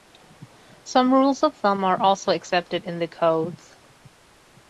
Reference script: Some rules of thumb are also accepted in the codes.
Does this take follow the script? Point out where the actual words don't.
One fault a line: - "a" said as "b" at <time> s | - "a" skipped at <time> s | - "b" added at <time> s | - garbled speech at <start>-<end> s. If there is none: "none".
none